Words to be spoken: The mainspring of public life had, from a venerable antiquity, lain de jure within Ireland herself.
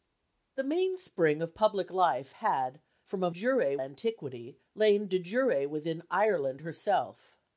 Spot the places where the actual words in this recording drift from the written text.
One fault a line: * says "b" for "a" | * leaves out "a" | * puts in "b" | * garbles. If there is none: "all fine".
* says "jure" for "venerable"